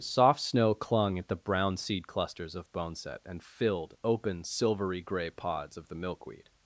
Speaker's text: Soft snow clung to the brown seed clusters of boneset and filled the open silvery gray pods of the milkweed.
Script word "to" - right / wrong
wrong